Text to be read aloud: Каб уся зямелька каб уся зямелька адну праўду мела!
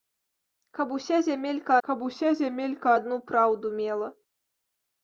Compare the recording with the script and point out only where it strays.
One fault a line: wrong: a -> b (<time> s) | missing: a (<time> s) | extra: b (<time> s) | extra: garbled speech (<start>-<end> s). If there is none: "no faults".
no faults